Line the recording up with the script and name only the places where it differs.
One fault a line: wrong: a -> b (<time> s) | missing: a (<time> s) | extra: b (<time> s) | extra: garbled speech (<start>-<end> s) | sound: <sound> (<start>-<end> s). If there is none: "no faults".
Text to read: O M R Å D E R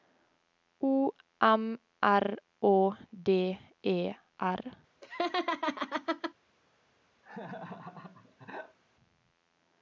sound: laugh (5.0-6.3 s)
sound: laugh (7.2-8.8 s)